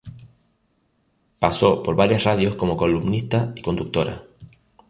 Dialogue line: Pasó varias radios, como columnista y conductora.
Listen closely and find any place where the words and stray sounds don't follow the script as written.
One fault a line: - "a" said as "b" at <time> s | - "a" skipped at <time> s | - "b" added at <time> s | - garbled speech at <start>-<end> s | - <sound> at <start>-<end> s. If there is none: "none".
- "por" added at 1.8 s